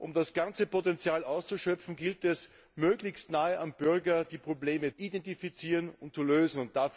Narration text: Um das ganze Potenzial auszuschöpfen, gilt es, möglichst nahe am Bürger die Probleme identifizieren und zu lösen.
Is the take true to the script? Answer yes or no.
yes